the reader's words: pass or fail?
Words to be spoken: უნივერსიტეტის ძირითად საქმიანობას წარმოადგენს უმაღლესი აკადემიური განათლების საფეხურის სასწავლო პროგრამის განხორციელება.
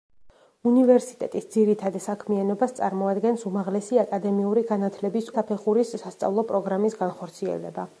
pass